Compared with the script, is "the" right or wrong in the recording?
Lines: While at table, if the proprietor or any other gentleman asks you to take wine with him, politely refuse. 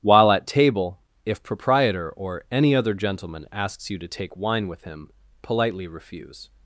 wrong